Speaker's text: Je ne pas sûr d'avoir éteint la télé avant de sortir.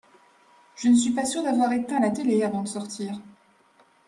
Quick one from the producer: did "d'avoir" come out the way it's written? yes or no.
yes